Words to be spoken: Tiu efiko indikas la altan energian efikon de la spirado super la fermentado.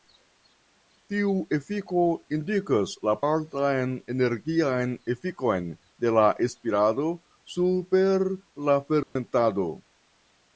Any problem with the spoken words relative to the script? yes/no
no